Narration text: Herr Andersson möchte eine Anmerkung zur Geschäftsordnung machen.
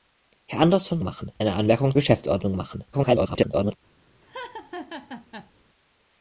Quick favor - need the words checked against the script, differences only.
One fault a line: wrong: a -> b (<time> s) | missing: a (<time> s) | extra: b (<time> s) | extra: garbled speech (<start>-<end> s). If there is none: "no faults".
wrong: möchte -> machen (1.0 s)
missing: zur (1.9 s)
extra: garbled speech (2.9-3.8 s)